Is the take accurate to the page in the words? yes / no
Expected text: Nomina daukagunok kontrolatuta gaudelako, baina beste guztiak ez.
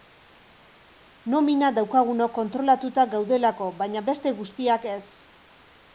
yes